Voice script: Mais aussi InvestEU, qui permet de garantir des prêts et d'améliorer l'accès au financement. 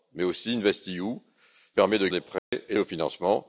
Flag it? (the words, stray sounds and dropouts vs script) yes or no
yes